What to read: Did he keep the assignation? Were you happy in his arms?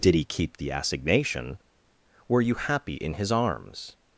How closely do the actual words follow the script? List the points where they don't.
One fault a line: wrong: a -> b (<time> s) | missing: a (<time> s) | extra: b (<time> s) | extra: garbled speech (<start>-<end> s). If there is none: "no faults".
no faults